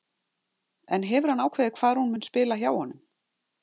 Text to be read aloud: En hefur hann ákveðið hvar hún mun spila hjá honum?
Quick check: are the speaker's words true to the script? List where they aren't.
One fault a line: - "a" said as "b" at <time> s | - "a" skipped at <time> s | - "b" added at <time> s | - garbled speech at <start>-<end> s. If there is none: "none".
none